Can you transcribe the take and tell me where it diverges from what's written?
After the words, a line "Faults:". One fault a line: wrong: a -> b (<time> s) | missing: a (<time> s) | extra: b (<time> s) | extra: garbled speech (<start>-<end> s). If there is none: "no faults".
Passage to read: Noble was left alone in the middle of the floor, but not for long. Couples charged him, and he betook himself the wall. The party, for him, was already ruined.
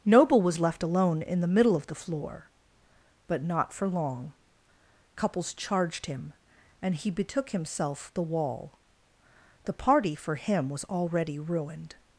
Noble was left alone in the middle of the floor, but not for long. Couples charged him, and he betook himself the wall. The party, for him, was already ruined.
Faults:
no faults